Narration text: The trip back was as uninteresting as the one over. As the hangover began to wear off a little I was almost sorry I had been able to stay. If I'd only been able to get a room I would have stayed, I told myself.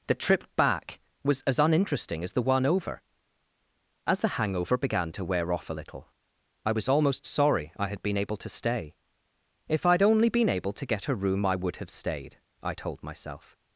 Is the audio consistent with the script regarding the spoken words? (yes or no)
yes